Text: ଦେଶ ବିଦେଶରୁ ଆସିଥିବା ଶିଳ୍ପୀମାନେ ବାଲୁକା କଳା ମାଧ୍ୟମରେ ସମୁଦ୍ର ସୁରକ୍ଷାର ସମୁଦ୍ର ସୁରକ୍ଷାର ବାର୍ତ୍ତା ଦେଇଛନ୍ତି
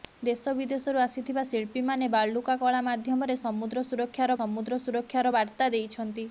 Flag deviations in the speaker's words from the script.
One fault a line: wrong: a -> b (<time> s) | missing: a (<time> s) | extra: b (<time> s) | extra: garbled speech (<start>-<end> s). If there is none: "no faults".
no faults